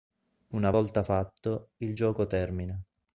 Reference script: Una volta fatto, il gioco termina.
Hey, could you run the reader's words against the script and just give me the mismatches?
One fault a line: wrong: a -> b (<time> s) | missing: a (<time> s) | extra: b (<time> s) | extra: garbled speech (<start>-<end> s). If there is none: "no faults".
no faults